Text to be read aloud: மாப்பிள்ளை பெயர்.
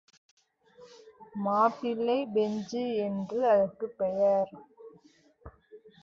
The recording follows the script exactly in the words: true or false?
false